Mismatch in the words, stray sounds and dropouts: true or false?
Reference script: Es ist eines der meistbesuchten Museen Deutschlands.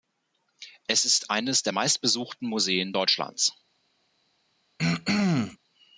true